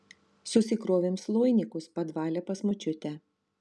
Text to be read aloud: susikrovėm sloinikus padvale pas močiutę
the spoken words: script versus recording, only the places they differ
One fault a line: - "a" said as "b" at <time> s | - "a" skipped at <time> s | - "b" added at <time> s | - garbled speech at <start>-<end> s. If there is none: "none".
none